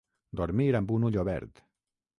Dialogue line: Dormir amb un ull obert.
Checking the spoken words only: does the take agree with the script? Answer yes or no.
yes